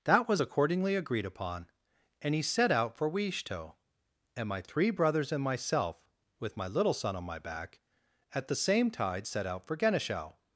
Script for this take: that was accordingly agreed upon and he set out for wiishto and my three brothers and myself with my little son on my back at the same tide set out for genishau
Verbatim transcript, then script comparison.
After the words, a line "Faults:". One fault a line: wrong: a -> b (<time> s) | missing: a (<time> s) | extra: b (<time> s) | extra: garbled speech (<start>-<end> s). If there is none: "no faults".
that was accordingly agreed upon and he set out for wiishto and my three brothers and myself with my little son on my back at the same tide set out for genishau
Faults:
no faults